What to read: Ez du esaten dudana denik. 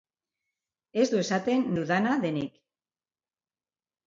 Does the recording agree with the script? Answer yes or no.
yes